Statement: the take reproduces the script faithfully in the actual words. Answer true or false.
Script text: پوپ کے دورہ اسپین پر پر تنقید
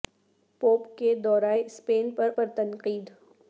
true